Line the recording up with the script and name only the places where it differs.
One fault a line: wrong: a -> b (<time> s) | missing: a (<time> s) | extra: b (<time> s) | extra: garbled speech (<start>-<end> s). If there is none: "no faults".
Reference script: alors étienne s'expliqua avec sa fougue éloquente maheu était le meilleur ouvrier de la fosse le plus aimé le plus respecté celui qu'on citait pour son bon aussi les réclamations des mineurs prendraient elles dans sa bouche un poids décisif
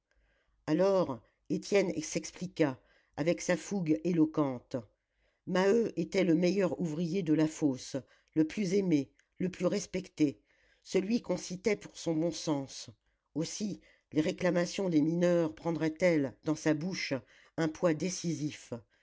extra: sens (12.3 s)